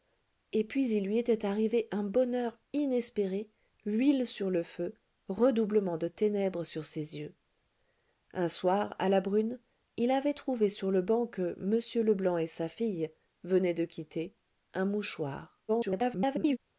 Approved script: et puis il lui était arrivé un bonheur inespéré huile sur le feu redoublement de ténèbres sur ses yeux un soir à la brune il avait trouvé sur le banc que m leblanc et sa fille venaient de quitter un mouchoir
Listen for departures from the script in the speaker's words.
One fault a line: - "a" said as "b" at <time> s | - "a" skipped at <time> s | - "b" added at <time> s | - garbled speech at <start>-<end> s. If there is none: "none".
- garbled speech at 15.7-16.6 s